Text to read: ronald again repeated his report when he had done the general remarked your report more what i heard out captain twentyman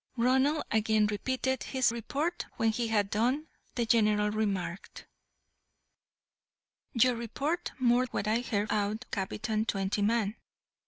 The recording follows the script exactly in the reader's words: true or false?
true